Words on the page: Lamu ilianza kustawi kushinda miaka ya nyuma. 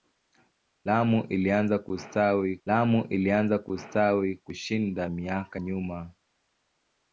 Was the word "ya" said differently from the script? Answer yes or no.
yes